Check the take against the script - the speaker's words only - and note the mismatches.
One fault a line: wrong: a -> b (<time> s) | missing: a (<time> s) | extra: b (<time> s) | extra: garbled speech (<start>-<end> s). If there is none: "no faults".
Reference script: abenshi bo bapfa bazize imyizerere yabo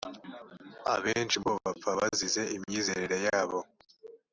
no faults